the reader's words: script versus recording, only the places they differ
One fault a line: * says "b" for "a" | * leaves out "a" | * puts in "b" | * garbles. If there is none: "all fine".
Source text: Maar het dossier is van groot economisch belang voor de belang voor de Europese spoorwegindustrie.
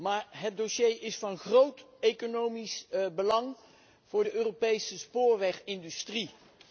* leaves out "belang voor de"